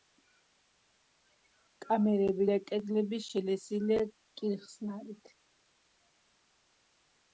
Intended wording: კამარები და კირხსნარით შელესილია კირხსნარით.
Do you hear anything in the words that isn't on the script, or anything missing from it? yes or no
yes